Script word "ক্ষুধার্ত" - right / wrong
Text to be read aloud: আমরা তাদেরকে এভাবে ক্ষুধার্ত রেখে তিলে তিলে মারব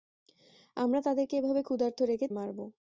right